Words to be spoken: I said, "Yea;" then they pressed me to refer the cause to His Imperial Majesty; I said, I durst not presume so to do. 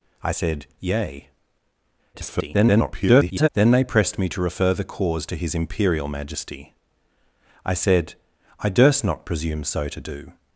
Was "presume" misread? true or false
false